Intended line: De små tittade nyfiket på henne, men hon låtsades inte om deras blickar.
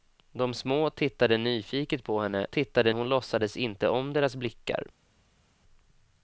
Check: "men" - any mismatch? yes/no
yes